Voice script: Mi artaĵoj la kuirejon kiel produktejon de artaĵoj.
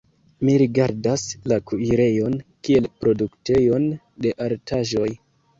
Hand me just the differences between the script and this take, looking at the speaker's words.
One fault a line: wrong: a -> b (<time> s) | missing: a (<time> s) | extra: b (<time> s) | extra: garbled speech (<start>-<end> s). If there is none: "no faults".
wrong: artaĵoj -> rigardas (0.6 s)